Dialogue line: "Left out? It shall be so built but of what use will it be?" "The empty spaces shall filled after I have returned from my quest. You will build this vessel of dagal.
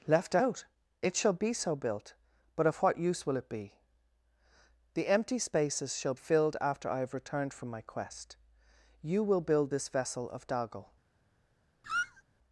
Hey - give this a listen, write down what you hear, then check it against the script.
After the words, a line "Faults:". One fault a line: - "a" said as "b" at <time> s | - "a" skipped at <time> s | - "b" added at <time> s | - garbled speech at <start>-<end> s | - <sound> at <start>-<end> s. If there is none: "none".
"Left out? It shall be so built but of what use will it be?" "The empty spaces shall filled after I have returned from my quest. You will build this vessel of dagal.
Faults:
- squeak at 11.8-12.2 s